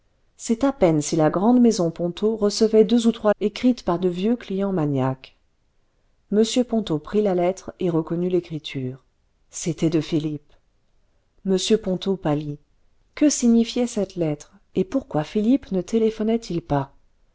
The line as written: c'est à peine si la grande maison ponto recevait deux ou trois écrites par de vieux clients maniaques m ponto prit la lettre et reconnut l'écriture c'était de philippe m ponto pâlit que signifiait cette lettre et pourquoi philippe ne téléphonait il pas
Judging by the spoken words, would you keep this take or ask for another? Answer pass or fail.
pass